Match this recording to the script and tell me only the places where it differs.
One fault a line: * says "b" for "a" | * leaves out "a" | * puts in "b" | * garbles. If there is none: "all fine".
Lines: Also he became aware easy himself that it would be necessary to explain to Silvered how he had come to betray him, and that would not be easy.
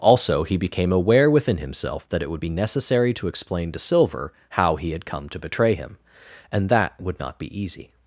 * says "within" for "easy"
* says "Silver" for "Silvered"